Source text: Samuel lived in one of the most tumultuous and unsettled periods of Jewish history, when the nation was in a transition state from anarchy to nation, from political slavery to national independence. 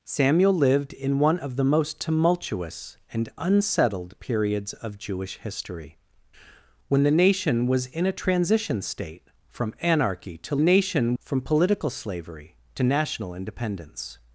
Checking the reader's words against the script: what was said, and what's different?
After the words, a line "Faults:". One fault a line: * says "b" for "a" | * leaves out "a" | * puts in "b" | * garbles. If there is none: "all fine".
Samuel lived in one of the most tumultuous and unsettled periods of Jewish history, when the nation was in a transition state from anarchy to nation, from political slavery to national independence.
Faults:
all fine